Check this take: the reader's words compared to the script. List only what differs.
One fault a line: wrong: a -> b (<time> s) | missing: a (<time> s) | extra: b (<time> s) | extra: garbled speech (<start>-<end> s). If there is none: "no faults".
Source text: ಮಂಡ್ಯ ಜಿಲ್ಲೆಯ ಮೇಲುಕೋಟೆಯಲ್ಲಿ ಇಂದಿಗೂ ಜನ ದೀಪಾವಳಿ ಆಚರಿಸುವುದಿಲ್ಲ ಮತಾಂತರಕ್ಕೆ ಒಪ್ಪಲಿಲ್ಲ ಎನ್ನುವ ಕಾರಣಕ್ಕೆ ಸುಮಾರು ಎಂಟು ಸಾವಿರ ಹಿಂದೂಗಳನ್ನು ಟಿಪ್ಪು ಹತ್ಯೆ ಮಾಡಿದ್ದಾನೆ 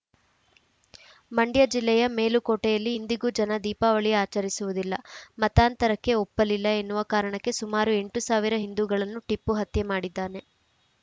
no faults